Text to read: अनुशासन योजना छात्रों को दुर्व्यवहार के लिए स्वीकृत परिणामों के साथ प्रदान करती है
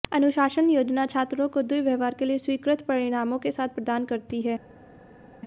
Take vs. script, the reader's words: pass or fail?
pass